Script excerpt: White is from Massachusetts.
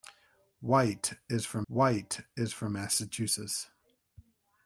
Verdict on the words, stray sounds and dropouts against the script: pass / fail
fail